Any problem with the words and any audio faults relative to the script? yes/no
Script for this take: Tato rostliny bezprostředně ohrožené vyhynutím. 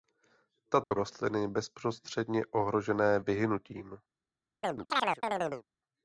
yes